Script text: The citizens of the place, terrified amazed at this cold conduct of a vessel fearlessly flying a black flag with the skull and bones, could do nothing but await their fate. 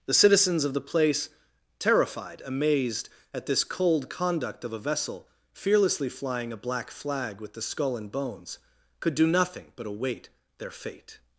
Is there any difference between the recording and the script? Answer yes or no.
no